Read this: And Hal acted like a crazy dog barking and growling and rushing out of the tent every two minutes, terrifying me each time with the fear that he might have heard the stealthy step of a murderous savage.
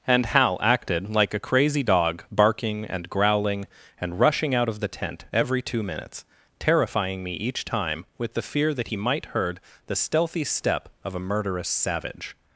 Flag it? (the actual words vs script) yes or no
yes